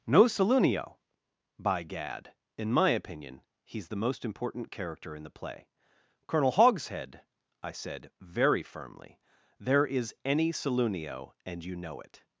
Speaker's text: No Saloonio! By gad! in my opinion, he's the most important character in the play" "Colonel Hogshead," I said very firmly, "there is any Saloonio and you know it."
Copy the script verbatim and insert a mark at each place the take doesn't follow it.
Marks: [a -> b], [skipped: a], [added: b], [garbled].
No Saloonio! By gad! in my opinion, he's the most important character in the play" "Colonel Hogshead," I said very firmly, "there is any Saloonio and you know it."